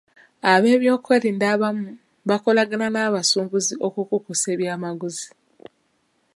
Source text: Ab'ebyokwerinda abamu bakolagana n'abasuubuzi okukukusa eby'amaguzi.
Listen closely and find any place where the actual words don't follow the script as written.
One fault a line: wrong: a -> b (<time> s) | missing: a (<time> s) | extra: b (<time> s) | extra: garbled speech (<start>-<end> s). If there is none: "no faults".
no faults